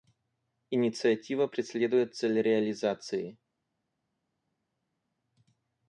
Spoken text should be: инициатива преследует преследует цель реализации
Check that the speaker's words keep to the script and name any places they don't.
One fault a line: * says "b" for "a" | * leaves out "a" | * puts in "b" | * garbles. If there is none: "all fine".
* leaves out "преследует"